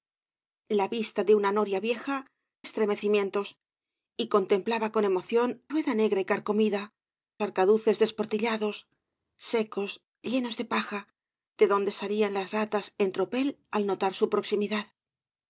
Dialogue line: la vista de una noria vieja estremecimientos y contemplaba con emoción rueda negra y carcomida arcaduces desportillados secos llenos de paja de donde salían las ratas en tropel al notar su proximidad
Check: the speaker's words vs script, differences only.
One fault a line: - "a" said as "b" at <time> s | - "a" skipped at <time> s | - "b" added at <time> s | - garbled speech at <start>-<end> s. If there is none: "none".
none